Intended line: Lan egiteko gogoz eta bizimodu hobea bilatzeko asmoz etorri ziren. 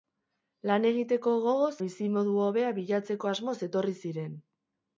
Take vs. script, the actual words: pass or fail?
fail